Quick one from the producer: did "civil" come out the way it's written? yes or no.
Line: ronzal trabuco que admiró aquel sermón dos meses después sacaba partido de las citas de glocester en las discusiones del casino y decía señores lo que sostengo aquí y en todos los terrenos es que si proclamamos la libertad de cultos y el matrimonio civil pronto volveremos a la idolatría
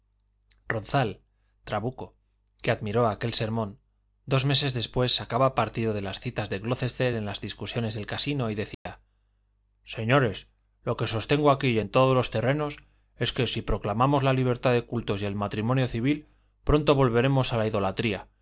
yes